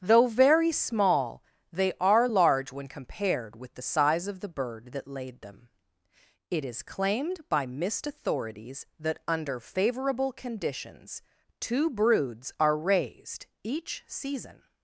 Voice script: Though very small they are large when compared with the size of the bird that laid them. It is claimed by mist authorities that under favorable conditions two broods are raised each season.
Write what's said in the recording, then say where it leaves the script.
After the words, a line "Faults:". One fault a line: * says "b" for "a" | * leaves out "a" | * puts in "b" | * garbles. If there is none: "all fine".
Though very small they are large when compared with the size of the bird that laid them. It is claimed by mist authorities that under favorable conditions two broods are raised each season.
Faults:
all fine